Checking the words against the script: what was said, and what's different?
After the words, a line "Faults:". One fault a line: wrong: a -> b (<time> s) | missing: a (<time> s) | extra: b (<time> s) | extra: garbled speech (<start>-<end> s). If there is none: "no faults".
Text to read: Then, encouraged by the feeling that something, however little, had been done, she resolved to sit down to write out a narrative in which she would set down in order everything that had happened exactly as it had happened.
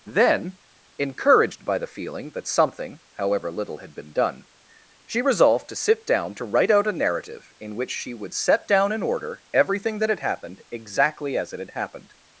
Then, encouraged by the feeling that something, however little, had been done, she resolved to sit down to write out a narrative in which she would set down in order everything that had happened exactly as it had happened.
Faults:
no faults